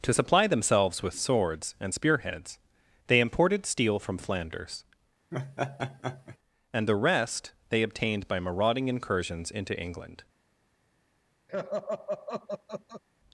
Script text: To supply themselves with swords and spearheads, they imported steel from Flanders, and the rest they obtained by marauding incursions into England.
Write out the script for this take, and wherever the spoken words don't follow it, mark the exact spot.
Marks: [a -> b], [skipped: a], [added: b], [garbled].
To supply themselves with swords and spearheads, they imported steel from Flanders, and the rest they obtained by marauding incursions into England.